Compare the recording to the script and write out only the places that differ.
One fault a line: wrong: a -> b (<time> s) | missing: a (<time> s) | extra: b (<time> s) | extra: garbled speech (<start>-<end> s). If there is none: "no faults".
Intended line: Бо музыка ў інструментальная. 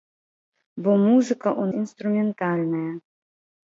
no faults